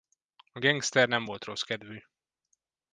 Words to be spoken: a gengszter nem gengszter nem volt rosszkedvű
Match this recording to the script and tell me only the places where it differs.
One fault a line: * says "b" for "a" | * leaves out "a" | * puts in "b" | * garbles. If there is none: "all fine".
* leaves out "gengszter nem"